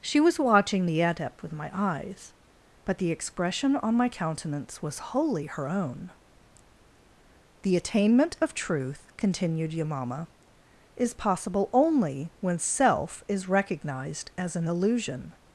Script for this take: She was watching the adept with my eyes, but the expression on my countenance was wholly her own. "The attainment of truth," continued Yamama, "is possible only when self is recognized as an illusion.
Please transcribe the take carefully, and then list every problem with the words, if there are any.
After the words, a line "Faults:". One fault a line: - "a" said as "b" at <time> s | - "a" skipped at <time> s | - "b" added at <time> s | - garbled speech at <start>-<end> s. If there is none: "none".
She was watching the adept with my eyes, but the expression on my countenance was wholly her own. "The attainment of truth," continued Yamama, "is possible only when self is recognized as an illusion.
Faults:
none